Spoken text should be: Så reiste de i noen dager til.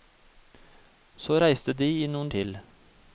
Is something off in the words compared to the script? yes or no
yes